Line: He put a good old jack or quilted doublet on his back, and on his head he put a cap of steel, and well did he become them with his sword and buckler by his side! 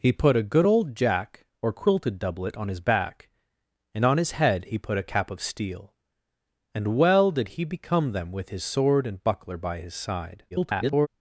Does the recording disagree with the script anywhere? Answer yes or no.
yes